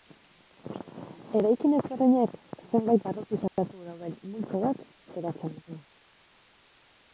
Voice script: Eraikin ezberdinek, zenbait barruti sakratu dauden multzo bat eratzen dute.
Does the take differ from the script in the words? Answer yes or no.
no